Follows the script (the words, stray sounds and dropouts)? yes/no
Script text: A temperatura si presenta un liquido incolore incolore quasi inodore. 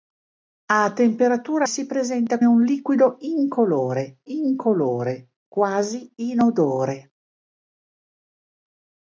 yes